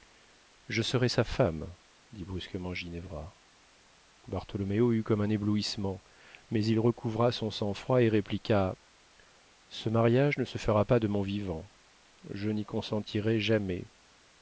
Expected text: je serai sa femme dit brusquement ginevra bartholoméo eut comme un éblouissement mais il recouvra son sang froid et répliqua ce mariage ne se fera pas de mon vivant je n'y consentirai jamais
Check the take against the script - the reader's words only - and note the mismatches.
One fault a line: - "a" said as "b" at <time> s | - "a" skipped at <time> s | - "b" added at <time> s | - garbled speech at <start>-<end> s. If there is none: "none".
none